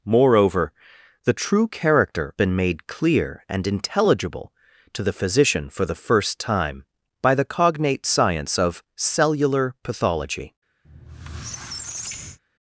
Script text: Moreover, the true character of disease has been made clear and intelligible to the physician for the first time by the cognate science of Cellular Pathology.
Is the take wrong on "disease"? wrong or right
wrong